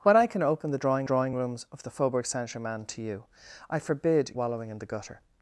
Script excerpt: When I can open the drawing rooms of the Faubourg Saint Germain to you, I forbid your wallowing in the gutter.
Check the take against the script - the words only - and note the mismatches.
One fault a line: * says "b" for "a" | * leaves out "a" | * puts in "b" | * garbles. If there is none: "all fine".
* puts in "drawing"
* leaves out "your"